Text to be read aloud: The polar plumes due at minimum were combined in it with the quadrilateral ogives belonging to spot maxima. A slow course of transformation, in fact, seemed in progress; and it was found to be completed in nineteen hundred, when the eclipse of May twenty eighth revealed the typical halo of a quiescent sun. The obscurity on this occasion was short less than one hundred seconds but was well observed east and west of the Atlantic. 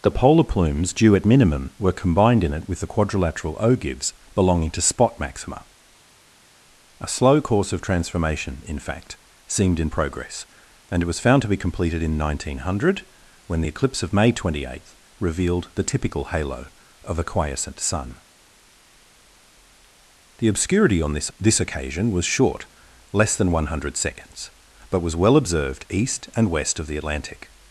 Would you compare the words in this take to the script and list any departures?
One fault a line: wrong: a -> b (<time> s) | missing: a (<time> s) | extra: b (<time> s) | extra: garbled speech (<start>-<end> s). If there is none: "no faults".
extra: this (21.4 s)